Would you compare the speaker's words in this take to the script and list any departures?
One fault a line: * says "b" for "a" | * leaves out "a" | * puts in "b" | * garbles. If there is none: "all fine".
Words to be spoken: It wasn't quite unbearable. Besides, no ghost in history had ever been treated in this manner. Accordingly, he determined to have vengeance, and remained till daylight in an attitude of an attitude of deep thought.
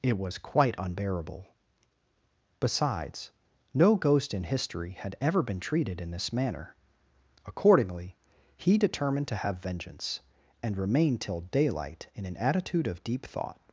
* says "was" for "wasn't"
* leaves out "an attitude of"